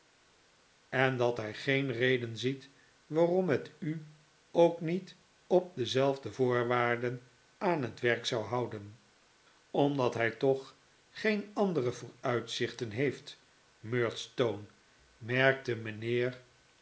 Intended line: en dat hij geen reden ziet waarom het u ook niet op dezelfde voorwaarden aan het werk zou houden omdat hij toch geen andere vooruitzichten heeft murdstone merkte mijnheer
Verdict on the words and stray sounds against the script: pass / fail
pass